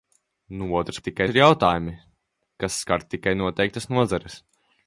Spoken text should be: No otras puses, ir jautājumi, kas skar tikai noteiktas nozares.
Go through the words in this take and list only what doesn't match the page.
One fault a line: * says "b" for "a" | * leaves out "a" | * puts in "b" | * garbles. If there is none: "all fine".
* says "tikai" for "puses"